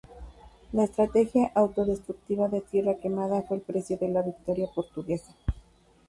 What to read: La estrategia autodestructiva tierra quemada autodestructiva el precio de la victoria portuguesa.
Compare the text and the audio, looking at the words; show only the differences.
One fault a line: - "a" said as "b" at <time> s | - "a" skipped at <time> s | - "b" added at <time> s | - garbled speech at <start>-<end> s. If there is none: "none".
- "de" added at 2.5 s
- "autodestructiva" said as "fue" at 3.4 s